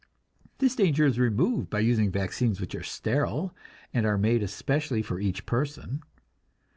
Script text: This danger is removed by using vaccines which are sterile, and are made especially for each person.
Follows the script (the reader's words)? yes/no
yes